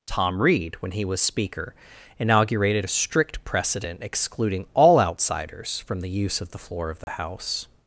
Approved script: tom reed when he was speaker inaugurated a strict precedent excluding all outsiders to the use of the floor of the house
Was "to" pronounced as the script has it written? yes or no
no